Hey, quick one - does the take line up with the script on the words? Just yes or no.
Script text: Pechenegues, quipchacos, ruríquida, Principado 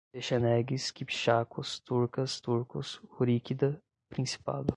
no